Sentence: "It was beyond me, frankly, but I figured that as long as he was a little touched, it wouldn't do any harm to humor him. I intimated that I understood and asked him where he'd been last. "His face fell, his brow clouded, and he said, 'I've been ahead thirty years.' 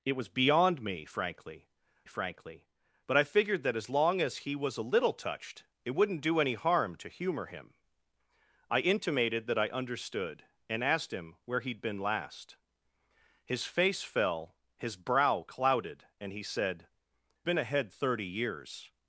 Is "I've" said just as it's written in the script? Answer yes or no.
no